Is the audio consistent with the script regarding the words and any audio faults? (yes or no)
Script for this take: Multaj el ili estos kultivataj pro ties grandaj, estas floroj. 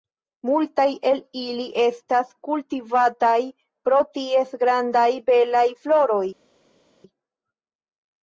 no